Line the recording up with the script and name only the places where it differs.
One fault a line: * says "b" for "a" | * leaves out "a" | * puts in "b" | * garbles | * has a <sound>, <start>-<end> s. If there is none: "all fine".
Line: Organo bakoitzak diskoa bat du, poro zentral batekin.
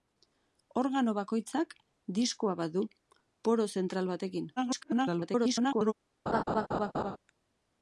* garbles
* has a laugh, 6.3-7.2 s